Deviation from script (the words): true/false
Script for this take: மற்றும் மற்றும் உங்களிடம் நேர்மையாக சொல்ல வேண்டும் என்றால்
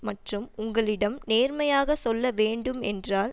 true